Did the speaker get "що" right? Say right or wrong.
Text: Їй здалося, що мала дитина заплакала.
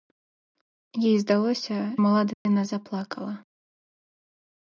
wrong